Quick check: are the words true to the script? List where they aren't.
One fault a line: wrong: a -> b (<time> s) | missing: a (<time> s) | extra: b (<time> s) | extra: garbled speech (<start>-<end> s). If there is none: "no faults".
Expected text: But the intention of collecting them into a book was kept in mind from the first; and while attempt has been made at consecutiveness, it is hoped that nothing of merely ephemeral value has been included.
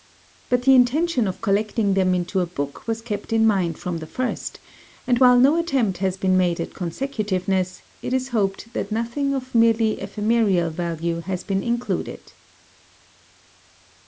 extra: no (5.4 s)